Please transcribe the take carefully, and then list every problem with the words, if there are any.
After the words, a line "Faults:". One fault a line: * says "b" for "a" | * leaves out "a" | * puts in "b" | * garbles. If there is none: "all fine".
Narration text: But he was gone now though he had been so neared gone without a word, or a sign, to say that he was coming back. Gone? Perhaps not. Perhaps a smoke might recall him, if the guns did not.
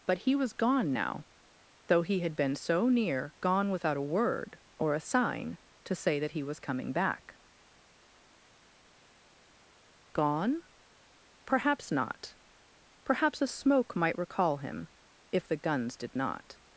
But he was gone now though he had been so near gone without a word, or a sign, to say that he was coming back. Gone? Perhaps not. Perhaps a smoke might recall him, if the guns did not.
Faults:
* says "near" for "neared"